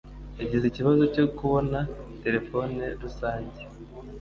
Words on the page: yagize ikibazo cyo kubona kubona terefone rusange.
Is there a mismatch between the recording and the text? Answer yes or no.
yes